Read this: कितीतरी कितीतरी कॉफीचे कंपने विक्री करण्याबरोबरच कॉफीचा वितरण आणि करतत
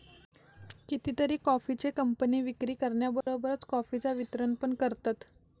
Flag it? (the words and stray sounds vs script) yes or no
yes